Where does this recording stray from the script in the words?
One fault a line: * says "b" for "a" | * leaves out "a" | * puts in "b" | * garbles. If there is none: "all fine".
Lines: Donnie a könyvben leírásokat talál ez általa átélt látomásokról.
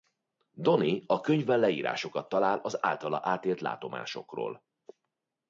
* says "az" for "ez"